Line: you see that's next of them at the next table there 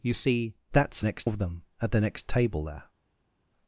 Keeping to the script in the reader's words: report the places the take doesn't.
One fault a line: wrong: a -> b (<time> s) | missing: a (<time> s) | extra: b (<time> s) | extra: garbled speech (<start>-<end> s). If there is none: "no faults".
no faults